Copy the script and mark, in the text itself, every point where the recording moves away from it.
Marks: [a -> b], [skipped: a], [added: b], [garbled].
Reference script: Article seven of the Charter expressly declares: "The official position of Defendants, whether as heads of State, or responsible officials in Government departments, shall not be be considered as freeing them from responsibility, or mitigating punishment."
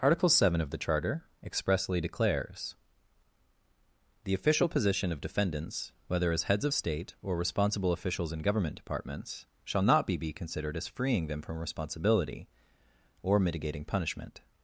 Article seven of the Charter expressly declares: "The official position of Defendants, whether as heads of State, or responsible officials in Government departments, shall not be be considered as freeing them from responsibility, or mitigating punishment."